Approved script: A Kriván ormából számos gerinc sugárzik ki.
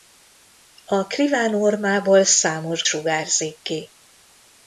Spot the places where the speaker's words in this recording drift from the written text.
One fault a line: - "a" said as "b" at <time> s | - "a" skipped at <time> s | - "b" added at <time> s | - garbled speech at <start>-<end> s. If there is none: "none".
- "gerinc" skipped at 2.8 s